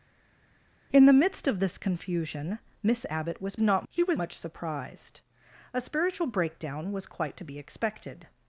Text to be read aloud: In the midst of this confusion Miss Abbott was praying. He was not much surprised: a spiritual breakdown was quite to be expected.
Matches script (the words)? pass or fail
fail